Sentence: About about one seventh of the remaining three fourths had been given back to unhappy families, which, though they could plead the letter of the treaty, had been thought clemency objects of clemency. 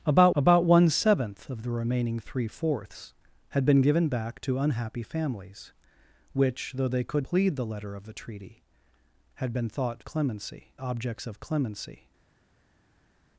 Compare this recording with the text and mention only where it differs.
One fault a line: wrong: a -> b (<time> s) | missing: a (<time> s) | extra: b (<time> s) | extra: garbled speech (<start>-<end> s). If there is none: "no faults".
no faults